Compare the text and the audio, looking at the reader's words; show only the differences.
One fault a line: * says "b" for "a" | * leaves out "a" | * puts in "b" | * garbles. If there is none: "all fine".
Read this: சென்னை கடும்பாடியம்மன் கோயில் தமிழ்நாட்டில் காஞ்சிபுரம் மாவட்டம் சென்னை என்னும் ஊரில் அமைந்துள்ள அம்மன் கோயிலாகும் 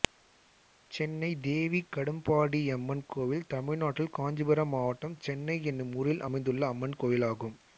* puts in "தேவி"